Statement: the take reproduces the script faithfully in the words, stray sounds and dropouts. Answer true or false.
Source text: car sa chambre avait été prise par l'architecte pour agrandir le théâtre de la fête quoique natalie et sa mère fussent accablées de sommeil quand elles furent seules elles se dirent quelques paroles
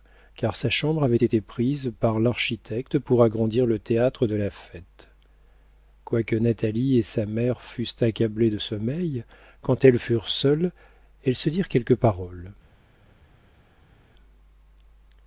true